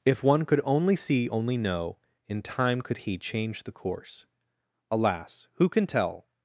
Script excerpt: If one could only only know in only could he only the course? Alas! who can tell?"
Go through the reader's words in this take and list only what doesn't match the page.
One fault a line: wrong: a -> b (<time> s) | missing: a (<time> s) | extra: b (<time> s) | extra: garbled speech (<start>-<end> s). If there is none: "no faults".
extra: see (0.9 s)
wrong: only -> time (2.4 s)
wrong: only -> change (3.2 s)